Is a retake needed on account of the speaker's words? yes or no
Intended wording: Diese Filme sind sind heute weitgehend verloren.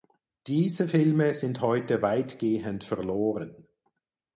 yes